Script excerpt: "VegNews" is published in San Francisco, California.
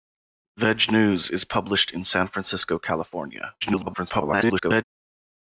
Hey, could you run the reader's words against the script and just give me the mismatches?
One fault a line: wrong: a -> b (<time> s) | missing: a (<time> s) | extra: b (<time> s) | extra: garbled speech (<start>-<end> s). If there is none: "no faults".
extra: garbled speech (3.6-4.8 s)